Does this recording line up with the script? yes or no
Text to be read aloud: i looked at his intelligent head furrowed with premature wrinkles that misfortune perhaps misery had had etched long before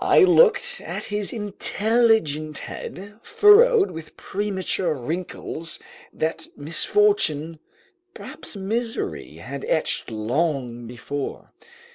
no